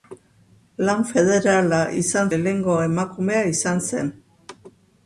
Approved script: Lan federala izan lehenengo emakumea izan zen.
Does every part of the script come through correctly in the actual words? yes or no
yes